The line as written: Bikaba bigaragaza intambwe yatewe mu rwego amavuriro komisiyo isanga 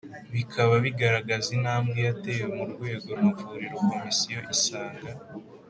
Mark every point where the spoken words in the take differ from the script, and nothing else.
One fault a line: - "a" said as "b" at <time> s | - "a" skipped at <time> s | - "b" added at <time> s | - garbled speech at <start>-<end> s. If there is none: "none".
none